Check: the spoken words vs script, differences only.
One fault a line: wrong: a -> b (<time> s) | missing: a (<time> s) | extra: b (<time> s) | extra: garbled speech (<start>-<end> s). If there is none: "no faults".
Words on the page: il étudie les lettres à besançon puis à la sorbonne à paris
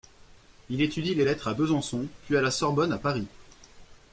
no faults